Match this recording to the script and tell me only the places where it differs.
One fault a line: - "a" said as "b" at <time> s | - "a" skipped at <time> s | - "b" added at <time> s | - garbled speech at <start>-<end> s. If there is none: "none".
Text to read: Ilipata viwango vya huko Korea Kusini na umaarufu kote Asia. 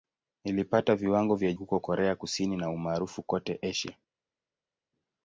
none